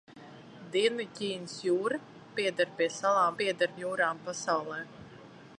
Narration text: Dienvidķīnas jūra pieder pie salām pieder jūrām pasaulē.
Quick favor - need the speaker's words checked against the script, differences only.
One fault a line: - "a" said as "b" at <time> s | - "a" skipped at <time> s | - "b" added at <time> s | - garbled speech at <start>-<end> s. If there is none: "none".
none